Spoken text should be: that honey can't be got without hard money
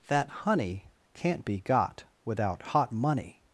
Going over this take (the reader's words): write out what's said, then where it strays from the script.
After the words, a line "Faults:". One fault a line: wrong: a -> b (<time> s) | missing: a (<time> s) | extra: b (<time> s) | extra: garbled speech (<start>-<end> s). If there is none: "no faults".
that honey can't be got without hot money
Faults:
wrong: hard -> hot (2.6 s)